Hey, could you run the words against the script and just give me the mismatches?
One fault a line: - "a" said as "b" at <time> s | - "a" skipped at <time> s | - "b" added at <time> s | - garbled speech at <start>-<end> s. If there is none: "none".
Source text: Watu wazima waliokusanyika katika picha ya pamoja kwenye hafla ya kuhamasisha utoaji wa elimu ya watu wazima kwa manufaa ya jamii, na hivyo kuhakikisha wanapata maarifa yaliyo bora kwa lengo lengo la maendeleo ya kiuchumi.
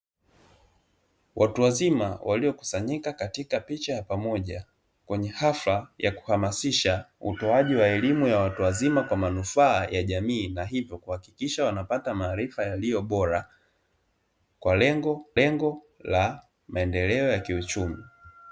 none